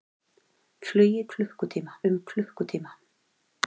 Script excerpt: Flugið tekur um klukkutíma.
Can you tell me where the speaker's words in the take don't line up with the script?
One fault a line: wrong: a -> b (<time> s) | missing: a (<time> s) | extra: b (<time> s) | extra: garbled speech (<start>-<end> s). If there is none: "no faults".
wrong: tekur -> klukkutíma (1.3 s)